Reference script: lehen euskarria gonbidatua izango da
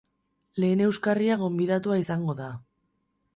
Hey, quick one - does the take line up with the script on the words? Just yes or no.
yes